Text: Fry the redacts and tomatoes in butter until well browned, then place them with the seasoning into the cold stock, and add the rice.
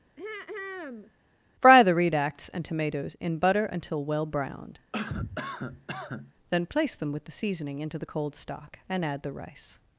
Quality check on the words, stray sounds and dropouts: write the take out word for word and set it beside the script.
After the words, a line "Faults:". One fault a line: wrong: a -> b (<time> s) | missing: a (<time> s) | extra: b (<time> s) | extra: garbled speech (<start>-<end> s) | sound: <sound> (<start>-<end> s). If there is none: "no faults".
Fry the redacts and tomatoes in butter until well browned, then place them with the seasoning into the cold stock, and add the rice.
Faults:
sound: throat clearing (0.2-1.1 s)
sound: cough (4.9-6.3 s)